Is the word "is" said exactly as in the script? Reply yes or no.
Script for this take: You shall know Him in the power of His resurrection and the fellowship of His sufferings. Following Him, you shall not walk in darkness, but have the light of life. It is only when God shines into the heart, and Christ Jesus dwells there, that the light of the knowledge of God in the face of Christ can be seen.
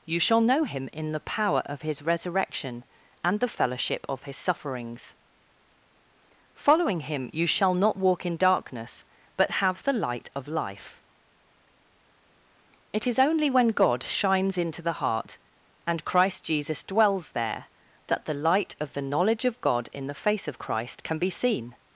yes